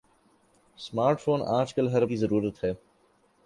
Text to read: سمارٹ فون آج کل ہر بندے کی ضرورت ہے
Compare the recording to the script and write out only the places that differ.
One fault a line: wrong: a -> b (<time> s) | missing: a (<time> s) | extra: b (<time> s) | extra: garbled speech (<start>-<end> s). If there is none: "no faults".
missing: بندے (2.0 s)